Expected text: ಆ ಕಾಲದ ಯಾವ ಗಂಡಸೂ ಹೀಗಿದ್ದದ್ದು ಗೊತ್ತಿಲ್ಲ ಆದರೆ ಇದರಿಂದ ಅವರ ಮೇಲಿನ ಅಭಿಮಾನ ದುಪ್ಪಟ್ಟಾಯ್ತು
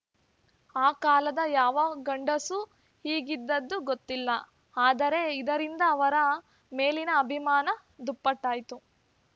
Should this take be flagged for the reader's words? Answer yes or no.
no